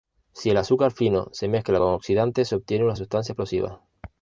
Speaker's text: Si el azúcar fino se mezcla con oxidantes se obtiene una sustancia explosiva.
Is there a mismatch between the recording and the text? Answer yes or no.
no